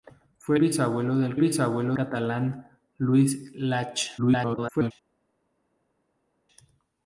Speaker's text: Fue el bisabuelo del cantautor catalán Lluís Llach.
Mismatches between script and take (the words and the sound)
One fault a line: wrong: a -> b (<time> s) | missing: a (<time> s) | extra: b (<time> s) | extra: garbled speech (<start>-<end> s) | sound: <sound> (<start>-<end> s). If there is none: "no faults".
missing: el (0.6 s)
wrong: cantautor -> bisabuelo (1.4 s)
extra: garbled speech (4.2-4.9 s)